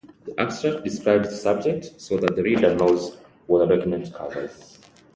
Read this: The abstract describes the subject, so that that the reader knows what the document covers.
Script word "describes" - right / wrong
right